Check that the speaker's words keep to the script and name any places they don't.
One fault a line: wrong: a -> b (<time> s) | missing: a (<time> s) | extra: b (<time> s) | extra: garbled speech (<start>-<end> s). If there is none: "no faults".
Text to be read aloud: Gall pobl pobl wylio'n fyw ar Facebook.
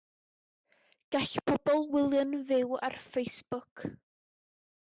missing: pobl (1.9 s)